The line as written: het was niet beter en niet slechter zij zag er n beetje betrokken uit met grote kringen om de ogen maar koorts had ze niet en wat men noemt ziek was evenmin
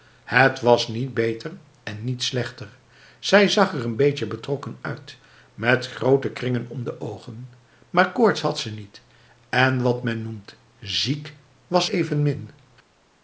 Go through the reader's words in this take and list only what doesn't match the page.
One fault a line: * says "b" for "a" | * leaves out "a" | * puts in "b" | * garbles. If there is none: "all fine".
all fine